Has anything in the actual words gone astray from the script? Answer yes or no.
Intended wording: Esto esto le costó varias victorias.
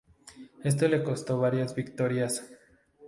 yes